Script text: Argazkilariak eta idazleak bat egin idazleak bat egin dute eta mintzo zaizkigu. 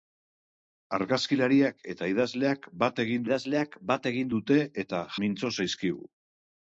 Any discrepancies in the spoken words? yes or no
no